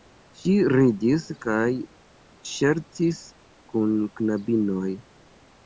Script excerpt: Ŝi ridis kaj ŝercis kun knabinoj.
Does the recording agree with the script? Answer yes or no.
yes